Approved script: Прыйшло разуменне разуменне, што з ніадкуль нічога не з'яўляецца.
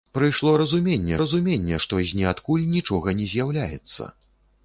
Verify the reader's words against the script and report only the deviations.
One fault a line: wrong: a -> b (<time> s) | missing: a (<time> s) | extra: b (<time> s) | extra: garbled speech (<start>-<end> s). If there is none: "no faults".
no faults